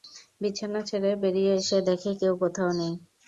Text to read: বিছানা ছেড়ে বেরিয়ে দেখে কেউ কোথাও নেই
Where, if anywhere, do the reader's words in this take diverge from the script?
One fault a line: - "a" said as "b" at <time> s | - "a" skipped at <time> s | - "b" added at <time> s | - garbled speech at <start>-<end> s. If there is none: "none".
- "এসে" added at 1.6 s